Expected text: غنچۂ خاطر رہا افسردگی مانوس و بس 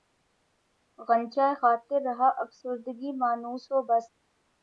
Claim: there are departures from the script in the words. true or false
false